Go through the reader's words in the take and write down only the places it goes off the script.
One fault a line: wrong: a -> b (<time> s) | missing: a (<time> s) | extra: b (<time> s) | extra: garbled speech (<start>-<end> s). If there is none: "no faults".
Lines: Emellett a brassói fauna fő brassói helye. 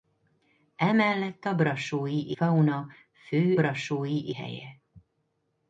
no faults